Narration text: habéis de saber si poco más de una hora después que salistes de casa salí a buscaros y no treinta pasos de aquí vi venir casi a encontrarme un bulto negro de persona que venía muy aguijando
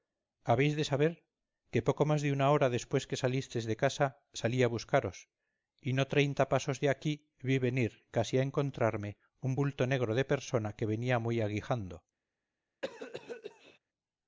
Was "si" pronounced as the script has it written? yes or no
no